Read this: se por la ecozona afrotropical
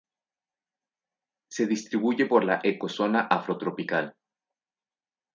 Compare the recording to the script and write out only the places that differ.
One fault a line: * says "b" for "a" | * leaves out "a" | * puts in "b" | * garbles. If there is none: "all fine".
* puts in "distribuye"